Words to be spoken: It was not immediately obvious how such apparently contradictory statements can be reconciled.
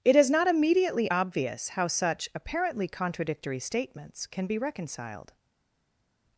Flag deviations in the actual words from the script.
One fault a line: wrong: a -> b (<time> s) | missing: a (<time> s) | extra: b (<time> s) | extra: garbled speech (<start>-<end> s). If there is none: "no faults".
wrong: was -> is (0.1 s)